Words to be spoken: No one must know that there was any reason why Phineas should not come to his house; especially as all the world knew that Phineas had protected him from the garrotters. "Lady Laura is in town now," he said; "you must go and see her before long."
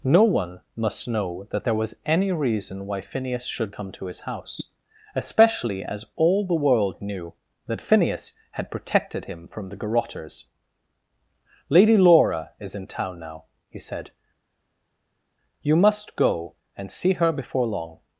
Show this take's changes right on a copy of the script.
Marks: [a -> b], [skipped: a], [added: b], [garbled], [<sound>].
No one must know that there was any reason why Phineas should [skipped: not] come to his house; especially as all the world knew that Phineas had protected him from the garrotters. "Lady Laura is in town now," he said; "you must go and see her before long."